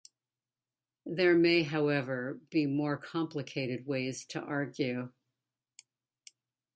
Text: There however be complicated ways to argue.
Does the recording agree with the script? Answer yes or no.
no